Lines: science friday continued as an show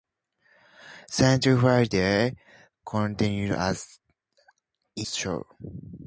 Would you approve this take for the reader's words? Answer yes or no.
yes